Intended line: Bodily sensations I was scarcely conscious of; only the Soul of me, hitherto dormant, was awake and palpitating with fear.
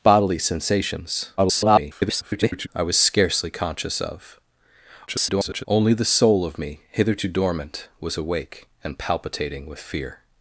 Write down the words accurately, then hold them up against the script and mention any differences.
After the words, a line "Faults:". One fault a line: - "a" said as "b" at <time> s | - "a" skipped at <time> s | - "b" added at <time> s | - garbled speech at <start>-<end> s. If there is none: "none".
Bodily sensations [garbled] I was scarcely conscious of; [garbled] only the Soul of me, hitherto dormant, was awake and palpitating with fear.
Faults:
- garbled speech at 1.4-2.7 s
- garbled speech at 5.1-5.6 s